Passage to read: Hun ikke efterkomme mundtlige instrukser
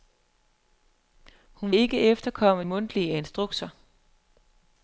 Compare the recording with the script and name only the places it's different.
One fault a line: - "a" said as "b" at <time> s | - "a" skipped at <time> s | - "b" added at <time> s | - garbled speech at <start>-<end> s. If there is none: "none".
none